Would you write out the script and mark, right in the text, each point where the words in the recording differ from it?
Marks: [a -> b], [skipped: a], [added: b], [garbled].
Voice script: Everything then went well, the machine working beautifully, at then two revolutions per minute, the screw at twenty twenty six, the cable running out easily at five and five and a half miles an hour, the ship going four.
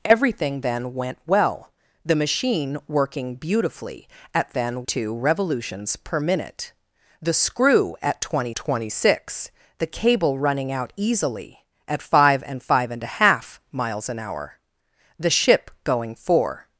Everything then went well, the machine working beautifully, at then two revolutions per minute, the screw at twenty twenty six, the cable running out easily at five and five and a half miles an hour, the ship going four.